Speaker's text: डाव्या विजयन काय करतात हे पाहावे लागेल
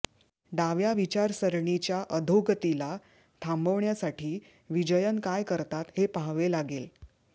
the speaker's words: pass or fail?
fail